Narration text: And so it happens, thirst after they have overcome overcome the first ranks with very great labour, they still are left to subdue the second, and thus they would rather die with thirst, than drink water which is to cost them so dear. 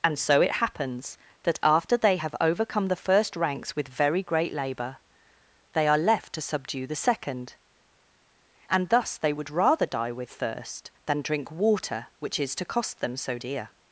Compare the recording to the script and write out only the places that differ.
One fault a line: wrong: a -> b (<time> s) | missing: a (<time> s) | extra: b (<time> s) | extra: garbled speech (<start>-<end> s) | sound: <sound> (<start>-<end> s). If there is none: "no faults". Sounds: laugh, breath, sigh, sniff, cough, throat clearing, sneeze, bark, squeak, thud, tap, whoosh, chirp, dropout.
wrong: thirst -> that (1.4 s)
missing: overcome (2.9 s)
missing: still (5.9 s)